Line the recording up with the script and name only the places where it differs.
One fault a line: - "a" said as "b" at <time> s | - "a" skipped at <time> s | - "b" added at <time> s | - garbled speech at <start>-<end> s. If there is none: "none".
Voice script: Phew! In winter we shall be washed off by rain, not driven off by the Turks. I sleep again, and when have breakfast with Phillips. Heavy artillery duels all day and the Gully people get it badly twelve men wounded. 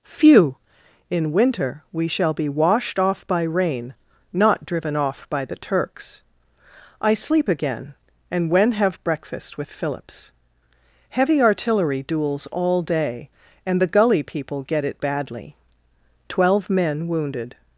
none